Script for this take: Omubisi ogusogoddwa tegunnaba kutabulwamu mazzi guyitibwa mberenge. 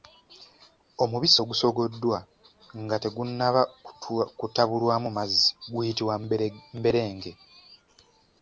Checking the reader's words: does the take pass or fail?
fail